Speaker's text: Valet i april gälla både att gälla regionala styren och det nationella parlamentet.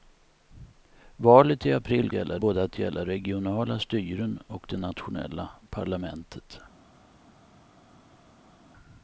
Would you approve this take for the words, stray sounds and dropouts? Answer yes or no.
yes